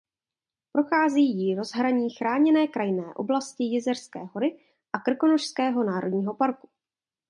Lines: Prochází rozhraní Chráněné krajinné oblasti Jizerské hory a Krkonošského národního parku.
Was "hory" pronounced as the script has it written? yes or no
yes